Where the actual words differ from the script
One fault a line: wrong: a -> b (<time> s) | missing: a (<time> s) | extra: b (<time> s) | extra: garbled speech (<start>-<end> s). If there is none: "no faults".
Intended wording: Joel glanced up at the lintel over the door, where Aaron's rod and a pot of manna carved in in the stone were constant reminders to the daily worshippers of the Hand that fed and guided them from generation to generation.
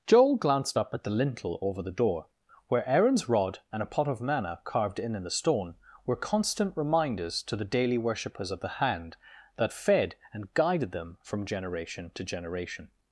no faults